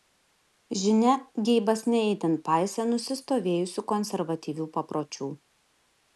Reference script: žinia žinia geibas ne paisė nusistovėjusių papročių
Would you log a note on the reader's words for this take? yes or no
yes